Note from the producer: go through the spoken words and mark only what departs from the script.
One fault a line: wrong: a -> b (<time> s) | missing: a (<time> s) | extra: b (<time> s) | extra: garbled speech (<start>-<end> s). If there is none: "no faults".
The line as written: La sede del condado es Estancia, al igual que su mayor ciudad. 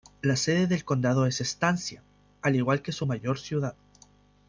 no faults